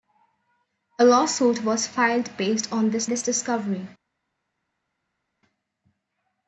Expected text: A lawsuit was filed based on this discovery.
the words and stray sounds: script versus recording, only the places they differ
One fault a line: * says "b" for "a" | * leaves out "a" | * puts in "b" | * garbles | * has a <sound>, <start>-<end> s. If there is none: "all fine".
* puts in "this"